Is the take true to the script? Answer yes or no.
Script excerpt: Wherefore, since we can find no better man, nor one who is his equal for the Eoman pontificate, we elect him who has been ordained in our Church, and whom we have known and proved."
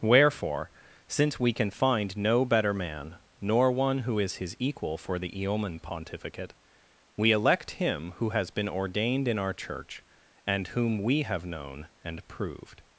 yes